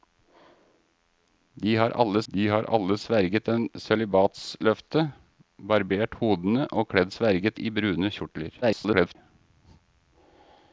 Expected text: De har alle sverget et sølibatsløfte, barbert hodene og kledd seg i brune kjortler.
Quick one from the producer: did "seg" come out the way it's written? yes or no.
no